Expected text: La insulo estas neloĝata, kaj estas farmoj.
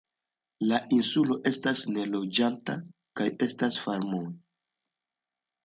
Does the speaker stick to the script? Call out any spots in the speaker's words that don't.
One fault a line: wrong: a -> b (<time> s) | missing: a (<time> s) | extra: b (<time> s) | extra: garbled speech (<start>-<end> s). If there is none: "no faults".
no faults